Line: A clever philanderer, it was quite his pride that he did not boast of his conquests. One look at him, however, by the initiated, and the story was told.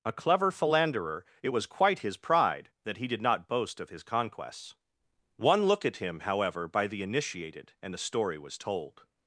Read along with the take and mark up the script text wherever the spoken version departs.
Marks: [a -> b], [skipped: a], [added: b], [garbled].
A clever philanderer, it was quite his pride that he did not boast of his conquests. One look at him, however, by the initiated, and the story was told.